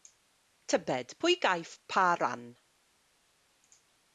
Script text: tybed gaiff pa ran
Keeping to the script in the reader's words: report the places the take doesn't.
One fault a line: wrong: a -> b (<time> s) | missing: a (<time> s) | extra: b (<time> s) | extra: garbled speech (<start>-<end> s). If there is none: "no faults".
extra: pwy (1.2 s)